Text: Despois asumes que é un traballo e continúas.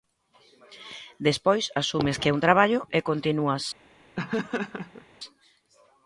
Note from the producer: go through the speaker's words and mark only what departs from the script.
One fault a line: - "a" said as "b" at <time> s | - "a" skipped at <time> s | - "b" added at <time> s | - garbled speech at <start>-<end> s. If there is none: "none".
none